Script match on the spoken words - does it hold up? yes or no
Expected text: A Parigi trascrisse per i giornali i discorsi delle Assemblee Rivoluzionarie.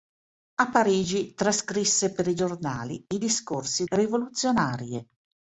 no